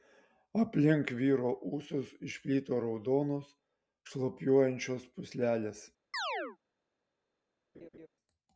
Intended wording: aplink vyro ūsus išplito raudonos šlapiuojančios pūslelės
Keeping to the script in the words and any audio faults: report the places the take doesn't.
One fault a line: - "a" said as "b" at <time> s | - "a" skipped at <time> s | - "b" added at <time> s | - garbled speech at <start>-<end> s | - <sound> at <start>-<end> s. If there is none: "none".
- chirp at 6.1-6.6 s
- laugh at 7.7-8.1 s